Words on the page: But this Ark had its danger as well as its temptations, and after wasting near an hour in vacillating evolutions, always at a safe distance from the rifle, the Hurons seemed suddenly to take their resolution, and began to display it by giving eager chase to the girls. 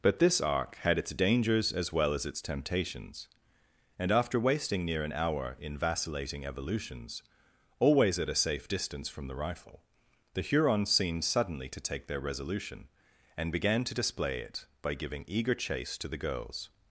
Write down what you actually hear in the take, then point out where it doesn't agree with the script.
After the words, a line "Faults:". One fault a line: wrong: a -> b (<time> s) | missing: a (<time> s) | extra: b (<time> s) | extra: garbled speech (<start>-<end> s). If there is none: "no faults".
But this Ark had its dangers as well as its temptations, and after wasting near an hour in vacillating evolutions, always at a safe distance from the rifle, the Hurons seemed suddenly to take their resolution, and began to display it by giving eager chase to the girls.
Faults:
wrong: danger -> dangers (1.1 s)